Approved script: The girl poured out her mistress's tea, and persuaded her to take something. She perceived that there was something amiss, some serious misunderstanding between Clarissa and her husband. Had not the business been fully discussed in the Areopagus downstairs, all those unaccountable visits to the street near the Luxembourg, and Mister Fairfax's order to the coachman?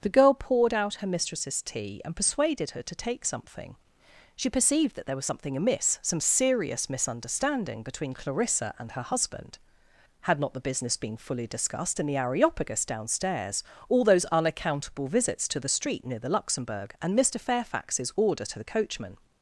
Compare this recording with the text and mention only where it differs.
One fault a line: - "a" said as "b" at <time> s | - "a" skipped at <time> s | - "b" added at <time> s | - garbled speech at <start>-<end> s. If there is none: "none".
none